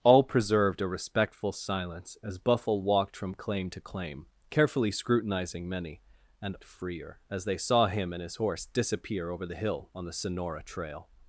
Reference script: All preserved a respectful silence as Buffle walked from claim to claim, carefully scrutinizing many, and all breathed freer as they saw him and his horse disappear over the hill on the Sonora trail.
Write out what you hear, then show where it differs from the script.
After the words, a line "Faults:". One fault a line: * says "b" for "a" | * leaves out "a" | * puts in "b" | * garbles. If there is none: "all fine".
All preserved a respectful silence as Buffle walked from claim to claim, carefully scrutinizing many, and freer as they saw him and his horse disappear over the hill on the Sonora trail.
Faults:
* leaves out "all breathed"